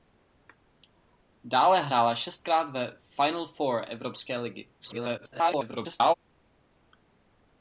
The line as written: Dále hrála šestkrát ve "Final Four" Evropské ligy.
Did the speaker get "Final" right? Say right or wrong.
right